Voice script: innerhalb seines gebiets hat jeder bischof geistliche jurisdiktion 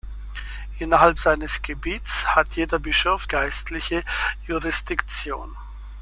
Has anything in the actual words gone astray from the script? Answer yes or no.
no